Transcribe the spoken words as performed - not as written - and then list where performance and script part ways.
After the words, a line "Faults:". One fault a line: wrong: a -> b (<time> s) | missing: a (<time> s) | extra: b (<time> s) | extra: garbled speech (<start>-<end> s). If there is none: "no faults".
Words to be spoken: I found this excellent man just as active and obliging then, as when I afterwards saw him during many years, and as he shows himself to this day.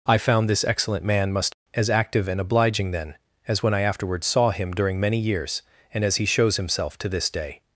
I found this excellent man must as active and obliging then, as when I afterwards saw him during many years, and as he shows himself to this day.
Faults:
wrong: just -> must (1.3 s)